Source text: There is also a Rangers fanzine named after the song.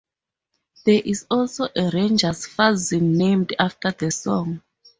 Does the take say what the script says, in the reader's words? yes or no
yes